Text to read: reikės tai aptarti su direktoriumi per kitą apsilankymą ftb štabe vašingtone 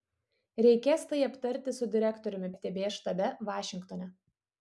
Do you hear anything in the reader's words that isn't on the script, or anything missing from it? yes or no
yes